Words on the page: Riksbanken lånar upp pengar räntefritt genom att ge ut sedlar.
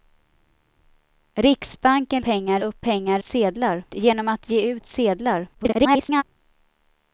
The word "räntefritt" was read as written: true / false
false